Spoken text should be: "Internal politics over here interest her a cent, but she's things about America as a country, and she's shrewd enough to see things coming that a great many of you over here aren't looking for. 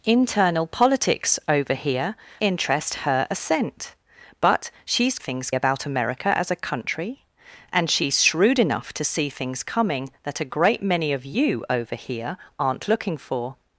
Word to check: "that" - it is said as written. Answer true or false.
true